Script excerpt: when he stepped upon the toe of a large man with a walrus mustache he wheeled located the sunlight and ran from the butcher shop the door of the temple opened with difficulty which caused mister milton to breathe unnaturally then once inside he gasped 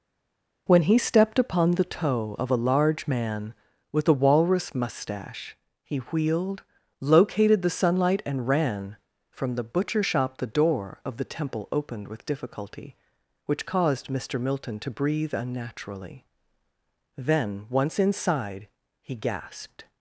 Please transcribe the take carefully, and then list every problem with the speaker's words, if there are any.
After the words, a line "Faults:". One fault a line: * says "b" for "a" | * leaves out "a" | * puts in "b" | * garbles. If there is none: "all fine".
when he stepped upon the toe of a large man with a walrus mustache he wheeled located the sunlight and ran from the butcher shop the door of the temple opened with difficulty which caused mister milton to breathe unnaturally then once inside he gasped
Faults:
all fine